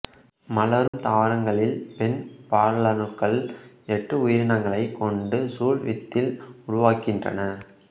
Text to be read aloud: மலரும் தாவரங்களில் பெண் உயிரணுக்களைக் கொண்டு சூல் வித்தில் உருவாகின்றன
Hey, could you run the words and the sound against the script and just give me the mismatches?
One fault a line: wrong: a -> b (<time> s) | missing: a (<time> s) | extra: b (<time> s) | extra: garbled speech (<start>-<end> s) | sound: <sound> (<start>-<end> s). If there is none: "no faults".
sound: dropout (0.9-0.9 s)
extra: பாலணுக்கள் எட்டு (2.5 s)